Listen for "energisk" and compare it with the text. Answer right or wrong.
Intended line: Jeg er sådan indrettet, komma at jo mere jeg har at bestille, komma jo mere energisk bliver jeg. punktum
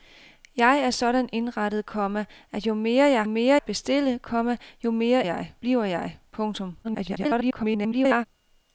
wrong